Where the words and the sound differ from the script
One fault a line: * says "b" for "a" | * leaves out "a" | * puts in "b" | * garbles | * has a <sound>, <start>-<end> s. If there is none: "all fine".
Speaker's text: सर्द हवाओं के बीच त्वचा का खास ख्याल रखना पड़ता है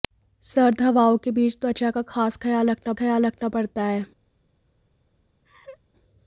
* puts in "ख्याल रखना"
* has a laugh, 5.4-5.8 s